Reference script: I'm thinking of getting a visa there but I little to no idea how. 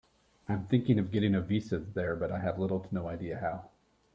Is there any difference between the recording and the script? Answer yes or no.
yes